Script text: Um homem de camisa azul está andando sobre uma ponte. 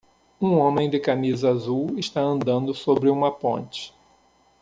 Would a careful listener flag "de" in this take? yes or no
no